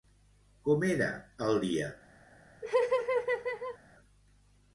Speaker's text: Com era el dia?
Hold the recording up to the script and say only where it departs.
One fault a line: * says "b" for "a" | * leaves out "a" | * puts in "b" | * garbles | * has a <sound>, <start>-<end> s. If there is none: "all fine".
* has a laugh, 2.6-3.8 s